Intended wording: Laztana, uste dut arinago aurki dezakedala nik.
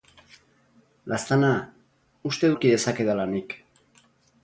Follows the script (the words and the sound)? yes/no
no